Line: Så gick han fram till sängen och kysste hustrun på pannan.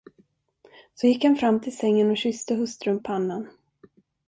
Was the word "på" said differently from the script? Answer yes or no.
yes